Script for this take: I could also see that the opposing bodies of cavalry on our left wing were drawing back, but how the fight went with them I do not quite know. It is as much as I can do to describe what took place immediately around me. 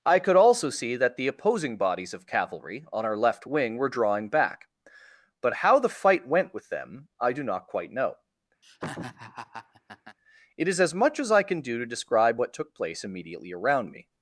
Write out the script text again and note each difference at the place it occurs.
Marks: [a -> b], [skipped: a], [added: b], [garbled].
I could also see that the opposing bodies of cavalry on our left wing were drawing back, but how the fight went with them I do not quite know. It is as much as I can do to describe what took place immediately around me.